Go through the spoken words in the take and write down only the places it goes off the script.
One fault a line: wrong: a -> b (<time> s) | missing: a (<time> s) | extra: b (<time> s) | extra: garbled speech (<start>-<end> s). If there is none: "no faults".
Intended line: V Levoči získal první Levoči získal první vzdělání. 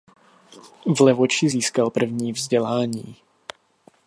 missing: Levoči získal první (2.3 s)